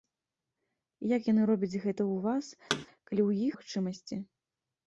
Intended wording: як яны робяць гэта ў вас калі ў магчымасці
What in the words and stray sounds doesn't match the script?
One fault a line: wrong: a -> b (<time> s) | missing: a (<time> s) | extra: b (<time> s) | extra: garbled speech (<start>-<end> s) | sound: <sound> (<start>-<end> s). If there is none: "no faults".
sound: thud (2.7-2.9 s)